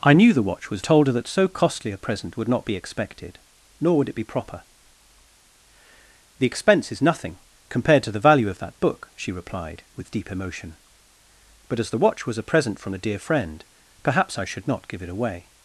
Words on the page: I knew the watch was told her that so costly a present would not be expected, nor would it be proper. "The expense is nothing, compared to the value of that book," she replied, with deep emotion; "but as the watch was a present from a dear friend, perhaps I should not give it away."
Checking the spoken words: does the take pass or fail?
pass